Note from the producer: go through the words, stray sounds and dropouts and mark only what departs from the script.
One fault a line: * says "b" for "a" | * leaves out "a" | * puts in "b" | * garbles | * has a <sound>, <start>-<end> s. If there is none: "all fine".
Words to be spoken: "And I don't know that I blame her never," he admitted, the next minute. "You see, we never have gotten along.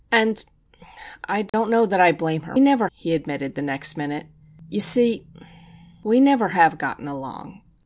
* has a dropout, 1.5-1.5 s